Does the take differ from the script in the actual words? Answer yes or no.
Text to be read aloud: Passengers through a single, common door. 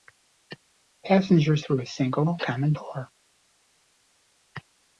no